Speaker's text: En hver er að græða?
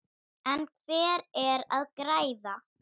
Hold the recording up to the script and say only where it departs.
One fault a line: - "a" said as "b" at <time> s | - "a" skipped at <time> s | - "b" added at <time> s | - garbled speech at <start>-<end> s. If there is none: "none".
none